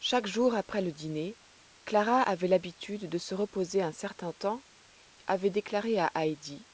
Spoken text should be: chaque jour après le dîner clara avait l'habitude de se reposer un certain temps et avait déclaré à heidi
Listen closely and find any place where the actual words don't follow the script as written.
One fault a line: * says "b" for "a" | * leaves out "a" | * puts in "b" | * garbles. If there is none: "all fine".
all fine